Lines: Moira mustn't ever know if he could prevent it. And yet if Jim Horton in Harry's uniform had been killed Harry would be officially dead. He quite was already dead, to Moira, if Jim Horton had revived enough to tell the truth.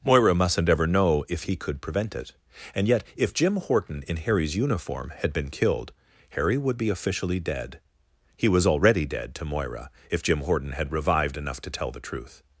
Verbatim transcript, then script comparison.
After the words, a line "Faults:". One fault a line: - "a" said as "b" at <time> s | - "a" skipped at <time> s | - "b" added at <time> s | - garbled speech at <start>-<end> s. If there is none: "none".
Moira mustn't ever know if he could prevent it. And yet if Jim Horton in Harry's uniform had been killed Harry would be officially dead. He was already dead, to Moira, if Jim Horton had revived enough to tell the truth.
Faults:
- "quite" skipped at 8.5 s